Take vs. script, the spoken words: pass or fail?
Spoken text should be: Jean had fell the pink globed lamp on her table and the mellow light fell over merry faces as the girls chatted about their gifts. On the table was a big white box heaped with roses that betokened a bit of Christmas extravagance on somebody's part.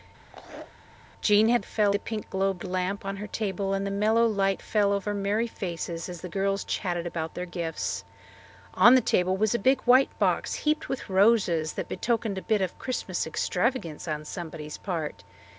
pass